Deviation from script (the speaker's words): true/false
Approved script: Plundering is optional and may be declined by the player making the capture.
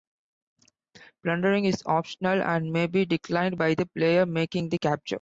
false